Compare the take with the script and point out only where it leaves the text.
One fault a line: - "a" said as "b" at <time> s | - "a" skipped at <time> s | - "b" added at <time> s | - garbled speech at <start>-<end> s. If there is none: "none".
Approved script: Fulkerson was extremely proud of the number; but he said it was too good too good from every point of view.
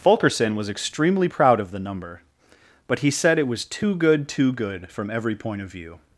none